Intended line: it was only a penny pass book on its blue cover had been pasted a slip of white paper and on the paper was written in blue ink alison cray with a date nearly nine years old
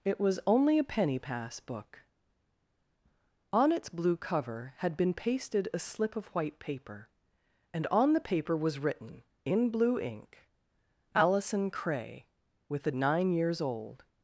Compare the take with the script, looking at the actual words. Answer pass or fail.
fail